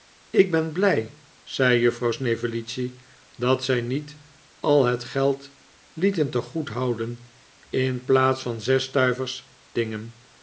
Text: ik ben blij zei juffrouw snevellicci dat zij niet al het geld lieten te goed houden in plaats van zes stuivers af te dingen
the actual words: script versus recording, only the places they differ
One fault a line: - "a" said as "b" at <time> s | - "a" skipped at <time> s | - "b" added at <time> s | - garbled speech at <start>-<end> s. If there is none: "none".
- "af te" skipped at 9.5 s